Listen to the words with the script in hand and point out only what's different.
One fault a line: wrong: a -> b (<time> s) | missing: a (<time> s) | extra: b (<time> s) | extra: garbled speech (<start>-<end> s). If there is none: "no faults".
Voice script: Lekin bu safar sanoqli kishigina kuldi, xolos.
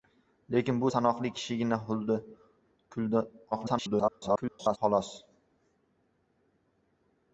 missing: safar (0.9 s)
extra: garbled speech (3.5-4.8 s)